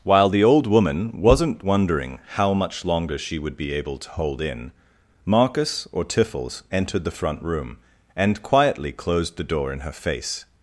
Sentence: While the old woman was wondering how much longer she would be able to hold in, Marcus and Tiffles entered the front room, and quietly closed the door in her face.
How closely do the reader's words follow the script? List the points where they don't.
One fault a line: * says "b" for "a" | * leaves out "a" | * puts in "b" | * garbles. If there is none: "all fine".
* says "wasn't" for "was"
* says "or" for "and"